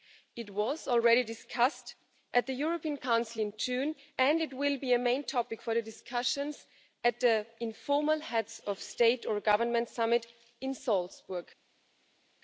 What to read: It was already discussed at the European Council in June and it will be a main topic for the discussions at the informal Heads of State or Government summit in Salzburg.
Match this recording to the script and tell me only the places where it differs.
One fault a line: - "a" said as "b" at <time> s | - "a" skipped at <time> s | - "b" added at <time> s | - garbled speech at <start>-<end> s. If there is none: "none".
none